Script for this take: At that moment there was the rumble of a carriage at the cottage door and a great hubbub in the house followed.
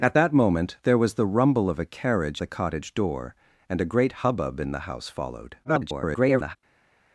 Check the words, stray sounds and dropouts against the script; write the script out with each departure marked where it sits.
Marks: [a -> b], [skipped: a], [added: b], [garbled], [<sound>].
At that moment there was the rumble of a carriage [skipped: at] the cottage door and a great hubbub in the house followed. [garbled]